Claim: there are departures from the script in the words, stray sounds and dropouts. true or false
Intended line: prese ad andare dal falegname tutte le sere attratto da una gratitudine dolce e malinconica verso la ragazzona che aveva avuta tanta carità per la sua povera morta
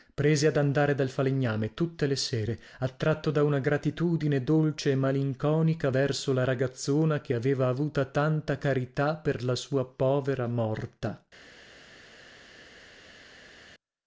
false